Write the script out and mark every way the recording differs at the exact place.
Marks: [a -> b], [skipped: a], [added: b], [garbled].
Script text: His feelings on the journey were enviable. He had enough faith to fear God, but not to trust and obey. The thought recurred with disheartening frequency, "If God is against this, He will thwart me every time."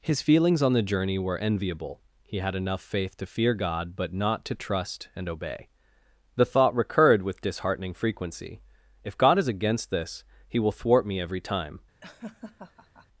His feelings on the journey were enviable. He had enough faith to fear God, but not to trust and obey. The thought recurred with disheartening frequency, "If God is against this, He will thwart me every time."